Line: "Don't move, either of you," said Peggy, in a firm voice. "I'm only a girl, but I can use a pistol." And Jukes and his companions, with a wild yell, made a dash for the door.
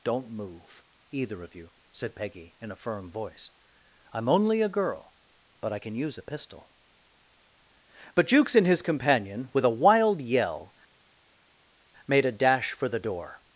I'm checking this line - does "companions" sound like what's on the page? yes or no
no